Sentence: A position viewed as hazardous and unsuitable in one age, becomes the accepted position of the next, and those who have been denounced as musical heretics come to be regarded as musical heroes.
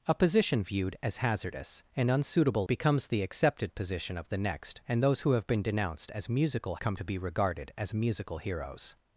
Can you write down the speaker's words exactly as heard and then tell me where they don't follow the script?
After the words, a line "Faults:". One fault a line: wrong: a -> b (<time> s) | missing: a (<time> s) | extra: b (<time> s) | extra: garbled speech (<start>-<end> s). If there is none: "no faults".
A position viewed as hazardous and unsuitable becomes the accepted position of the next, and those who have been denounced as musical come to be regarded as musical heroes.
Faults:
missing: in one age (2.7 s)
missing: heretics (6.8 s)